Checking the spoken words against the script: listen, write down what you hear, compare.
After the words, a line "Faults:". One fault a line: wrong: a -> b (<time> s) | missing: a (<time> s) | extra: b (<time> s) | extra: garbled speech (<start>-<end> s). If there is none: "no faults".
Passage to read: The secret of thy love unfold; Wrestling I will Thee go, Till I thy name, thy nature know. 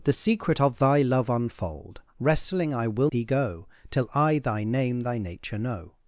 The secret of thy love unfold; Wrestling I will Thee go, Till I thy name, thy nature know.
Faults:
no faults